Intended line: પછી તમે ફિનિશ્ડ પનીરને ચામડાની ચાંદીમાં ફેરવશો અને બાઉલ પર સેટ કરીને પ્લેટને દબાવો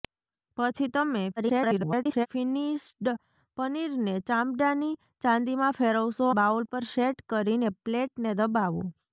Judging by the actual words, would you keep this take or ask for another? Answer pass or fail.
fail